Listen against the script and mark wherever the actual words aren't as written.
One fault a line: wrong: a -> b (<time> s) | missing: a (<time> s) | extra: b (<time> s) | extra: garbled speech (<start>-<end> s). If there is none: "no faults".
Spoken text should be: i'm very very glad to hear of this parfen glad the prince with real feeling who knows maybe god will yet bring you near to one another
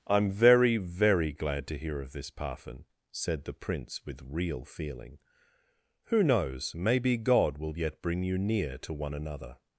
wrong: glad -> said (3.1 s)